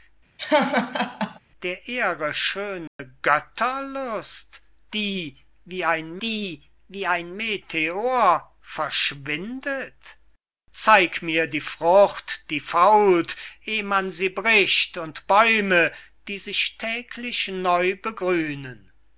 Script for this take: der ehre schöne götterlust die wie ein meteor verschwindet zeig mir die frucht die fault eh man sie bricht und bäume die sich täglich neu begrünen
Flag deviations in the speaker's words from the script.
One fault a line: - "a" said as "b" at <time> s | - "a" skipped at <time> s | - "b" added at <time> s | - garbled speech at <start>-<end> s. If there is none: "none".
- "die wie ein" added at 6.2 s